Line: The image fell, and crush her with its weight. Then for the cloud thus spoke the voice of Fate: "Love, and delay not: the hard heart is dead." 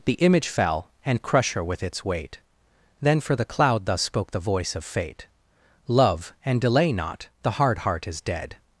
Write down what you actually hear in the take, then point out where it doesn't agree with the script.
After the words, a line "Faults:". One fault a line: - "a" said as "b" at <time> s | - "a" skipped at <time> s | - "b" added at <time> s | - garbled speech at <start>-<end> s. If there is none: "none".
The image fell, and crush her with its weight. Then for the cloud thus spoke the voice of Fate: "Love, and delay not: the hard heart is dead."
Faults:
none